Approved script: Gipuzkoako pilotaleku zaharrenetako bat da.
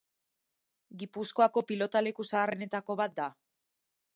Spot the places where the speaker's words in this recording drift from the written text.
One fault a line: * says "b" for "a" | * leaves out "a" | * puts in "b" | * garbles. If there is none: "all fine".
all fine